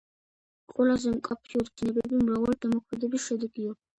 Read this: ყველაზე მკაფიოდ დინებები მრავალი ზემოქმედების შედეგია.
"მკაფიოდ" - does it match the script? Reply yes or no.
yes